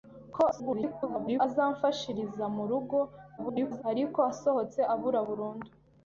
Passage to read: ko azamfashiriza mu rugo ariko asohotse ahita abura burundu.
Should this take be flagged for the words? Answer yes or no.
yes